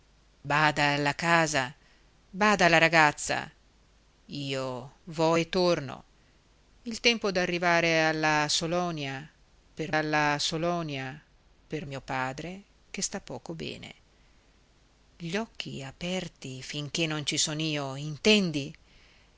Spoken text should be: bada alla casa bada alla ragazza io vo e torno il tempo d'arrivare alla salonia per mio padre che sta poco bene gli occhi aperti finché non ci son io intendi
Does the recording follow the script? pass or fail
fail